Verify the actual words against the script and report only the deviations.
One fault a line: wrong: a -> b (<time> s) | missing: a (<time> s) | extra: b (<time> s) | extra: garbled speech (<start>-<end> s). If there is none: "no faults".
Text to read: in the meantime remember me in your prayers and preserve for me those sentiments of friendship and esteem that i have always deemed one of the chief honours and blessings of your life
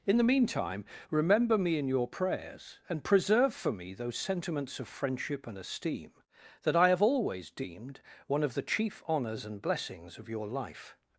no faults